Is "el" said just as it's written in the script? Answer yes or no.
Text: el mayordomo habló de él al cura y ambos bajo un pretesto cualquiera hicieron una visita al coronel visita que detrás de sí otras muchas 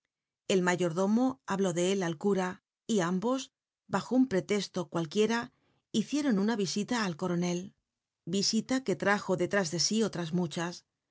yes